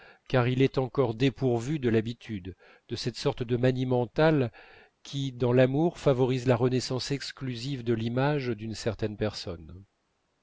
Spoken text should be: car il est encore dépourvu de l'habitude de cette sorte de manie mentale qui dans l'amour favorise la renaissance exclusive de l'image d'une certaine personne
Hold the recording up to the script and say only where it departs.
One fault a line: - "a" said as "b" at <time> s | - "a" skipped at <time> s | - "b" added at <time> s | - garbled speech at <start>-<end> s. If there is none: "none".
none